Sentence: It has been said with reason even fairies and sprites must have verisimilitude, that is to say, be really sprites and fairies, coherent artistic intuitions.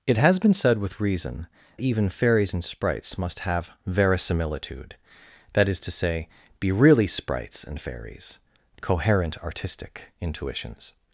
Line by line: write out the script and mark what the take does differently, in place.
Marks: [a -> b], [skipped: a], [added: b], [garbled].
It has been said with reason even fairies and sprites must have verisimilitude, that is to say, be really sprites and fairies, coherent artistic intuitions.